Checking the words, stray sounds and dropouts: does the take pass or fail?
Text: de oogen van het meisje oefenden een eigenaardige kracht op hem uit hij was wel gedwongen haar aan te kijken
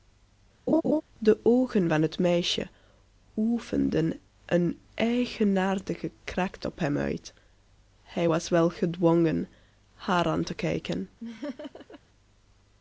fail